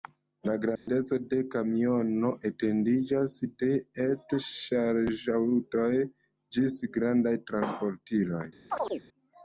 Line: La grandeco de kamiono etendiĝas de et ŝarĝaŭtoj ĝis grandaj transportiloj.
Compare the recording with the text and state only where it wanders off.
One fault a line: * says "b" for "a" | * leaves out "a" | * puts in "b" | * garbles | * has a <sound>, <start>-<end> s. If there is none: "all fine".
* has a dropout, 0.8-0.9 s
* has a chirp, 8.7-9.0 s